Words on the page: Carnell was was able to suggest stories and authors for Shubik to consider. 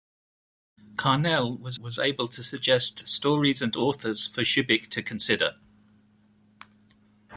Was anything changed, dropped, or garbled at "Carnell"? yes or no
no